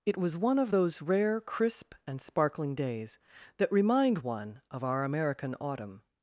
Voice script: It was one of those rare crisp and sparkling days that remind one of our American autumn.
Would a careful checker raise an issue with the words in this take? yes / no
no